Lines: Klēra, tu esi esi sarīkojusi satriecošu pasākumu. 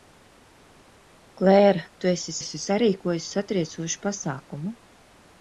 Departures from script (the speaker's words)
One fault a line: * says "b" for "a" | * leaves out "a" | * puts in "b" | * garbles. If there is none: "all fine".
all fine